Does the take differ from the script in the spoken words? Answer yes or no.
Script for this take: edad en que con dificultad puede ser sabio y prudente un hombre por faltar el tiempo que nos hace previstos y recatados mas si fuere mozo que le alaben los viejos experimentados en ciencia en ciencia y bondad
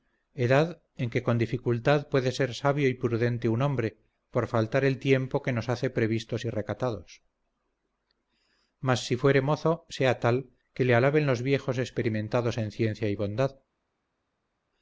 yes